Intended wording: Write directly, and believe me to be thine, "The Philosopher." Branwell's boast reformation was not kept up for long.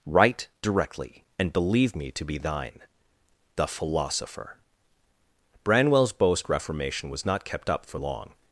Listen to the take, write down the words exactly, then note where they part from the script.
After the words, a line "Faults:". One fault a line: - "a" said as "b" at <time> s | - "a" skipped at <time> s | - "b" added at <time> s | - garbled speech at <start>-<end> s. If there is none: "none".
Write directly, and believe me to be thine, "The Philosopher." Branwell's boast reformation was not kept up for long.
Faults:
none